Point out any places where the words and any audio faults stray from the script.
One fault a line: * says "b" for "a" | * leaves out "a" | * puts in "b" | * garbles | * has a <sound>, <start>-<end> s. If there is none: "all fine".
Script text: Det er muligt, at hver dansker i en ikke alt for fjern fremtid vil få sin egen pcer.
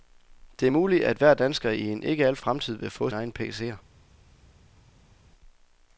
* leaves out "for fjern"
* leaves out "sin"